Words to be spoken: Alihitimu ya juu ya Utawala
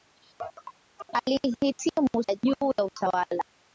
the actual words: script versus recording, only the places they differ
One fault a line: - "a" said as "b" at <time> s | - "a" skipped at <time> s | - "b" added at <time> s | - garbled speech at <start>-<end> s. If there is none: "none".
none